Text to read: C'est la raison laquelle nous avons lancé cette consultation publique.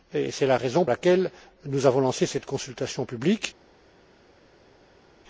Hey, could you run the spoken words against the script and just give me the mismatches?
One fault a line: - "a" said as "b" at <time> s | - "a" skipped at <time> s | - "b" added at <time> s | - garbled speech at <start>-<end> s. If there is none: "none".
none